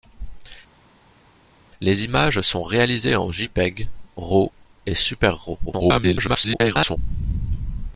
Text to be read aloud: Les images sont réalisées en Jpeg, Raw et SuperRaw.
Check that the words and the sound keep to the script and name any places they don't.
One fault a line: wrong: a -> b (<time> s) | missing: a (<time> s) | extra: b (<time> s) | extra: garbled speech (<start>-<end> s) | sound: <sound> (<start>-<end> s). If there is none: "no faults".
extra: garbled speech (5.7-7.0 s)